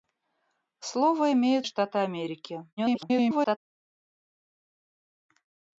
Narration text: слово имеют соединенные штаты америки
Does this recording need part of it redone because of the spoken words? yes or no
yes